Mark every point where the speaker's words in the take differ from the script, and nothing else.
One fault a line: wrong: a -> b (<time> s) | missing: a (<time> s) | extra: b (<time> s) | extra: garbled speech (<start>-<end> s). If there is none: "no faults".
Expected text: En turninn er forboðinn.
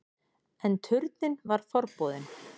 wrong: er -> var (1.5 s)